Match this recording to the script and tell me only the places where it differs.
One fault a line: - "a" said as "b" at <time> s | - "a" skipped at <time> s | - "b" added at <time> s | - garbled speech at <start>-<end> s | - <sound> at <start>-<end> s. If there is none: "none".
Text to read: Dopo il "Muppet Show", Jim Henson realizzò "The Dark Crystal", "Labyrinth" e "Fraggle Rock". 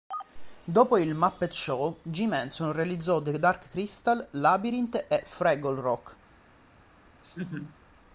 - laugh at 7.2-7.8 s